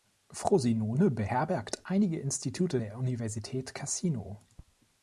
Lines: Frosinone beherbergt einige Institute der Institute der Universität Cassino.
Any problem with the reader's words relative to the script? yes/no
yes